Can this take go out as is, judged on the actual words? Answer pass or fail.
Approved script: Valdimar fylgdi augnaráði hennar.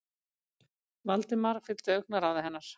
pass